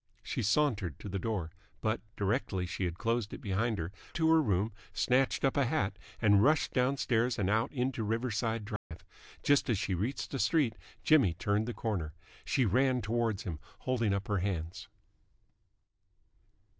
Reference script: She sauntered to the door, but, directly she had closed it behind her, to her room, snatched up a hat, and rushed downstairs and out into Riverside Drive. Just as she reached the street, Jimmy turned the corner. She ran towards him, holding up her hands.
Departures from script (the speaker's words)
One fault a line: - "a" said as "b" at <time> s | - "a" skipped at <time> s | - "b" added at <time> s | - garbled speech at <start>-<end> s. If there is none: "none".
none